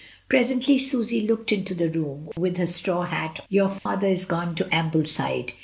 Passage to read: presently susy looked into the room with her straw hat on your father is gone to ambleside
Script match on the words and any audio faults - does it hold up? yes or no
no